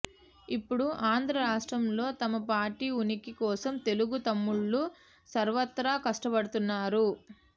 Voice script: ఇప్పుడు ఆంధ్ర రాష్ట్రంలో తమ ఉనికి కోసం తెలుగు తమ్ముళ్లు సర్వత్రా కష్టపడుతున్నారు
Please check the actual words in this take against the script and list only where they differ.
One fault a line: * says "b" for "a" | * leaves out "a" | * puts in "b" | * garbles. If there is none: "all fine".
* puts in "పార్టీ"